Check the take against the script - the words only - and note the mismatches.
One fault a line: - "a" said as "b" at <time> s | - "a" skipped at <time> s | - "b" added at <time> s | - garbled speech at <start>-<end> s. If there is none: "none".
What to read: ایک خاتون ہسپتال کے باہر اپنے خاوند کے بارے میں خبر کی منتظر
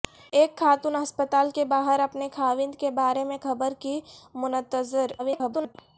- garbled speech at 5.2-5.8 s